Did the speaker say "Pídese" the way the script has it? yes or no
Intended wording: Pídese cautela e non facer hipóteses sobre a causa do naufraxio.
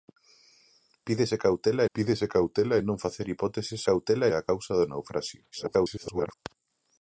yes